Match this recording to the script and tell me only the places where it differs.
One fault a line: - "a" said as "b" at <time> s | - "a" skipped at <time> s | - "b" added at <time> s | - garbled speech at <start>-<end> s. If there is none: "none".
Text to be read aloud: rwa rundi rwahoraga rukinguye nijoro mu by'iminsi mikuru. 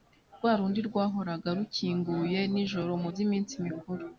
none